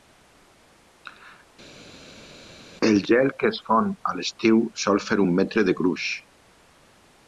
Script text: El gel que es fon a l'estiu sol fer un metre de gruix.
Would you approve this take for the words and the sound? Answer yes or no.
yes